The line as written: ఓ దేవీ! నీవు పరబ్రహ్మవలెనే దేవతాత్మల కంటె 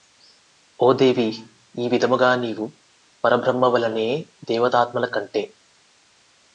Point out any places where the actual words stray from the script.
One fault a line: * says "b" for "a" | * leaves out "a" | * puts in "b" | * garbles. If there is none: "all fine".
* puts in "ఈ విధముగా"